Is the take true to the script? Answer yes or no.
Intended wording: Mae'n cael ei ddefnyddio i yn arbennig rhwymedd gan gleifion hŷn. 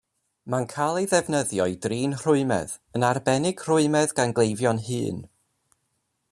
no